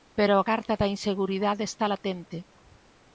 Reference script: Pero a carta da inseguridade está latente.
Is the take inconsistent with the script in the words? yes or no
no